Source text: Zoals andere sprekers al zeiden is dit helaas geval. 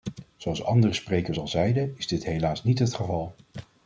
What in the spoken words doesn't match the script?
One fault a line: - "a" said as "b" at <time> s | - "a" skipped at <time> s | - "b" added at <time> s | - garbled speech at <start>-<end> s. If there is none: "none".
- "niet het" added at 2.6 s